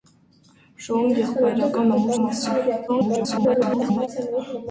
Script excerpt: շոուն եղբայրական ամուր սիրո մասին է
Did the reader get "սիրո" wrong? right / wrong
wrong